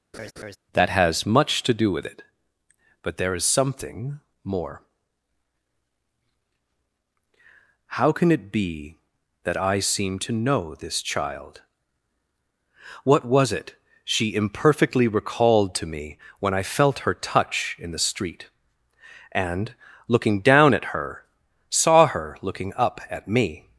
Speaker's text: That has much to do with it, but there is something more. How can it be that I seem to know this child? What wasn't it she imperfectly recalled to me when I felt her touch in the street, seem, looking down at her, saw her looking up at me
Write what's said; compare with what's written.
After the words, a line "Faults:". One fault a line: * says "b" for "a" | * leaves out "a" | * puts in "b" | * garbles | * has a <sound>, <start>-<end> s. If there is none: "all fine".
That has much to do with it, but there is something more. How can it be that I seem to know this child? What was it she imperfectly recalled to me when I felt her touch in the street, and, looking down at her, saw her looking up at me
Faults:
* has a laugh, 0.1-0.6 s
* says "was" for "wasn't"
* says "and" for "seem"